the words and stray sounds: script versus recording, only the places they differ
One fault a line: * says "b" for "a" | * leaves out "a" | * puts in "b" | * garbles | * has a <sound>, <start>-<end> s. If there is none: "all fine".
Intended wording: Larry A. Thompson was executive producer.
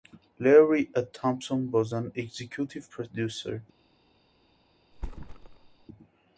* puts in "an"
* has a thud, 4.9-5.9 s